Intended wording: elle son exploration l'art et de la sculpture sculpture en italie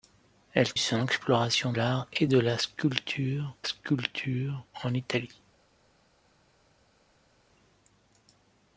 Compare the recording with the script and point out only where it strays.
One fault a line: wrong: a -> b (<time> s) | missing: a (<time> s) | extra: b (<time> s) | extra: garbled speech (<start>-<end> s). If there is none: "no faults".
no faults